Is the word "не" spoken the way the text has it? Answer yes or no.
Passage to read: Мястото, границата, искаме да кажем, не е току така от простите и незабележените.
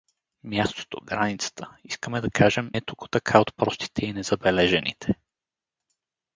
no